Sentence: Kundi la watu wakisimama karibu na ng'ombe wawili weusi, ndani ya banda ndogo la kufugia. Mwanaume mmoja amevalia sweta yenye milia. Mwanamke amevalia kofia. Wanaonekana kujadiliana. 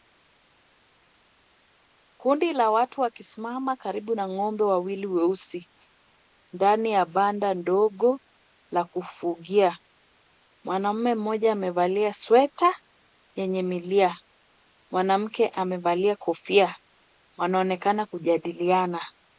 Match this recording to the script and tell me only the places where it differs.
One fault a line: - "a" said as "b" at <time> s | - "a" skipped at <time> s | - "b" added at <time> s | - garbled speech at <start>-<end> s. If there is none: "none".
none